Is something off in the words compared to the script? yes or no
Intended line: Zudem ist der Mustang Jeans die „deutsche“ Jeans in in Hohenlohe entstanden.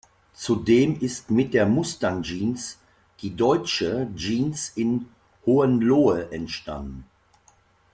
yes